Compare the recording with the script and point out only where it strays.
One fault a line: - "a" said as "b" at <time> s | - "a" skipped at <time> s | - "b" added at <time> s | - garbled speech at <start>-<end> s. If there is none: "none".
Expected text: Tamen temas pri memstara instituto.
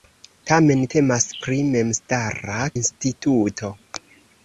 none